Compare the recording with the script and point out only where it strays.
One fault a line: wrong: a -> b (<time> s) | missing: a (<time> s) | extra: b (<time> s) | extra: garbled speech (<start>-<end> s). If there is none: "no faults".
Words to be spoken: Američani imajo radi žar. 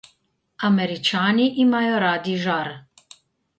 no faults